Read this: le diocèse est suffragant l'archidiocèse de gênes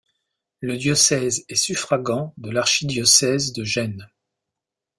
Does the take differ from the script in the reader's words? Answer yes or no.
yes